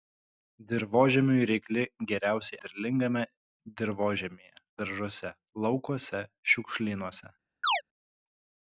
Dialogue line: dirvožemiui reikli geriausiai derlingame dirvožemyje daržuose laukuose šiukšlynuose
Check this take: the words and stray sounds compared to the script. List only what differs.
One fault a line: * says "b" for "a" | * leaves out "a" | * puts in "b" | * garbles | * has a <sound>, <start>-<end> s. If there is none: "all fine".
* has a chirp, 7.6-7.8 s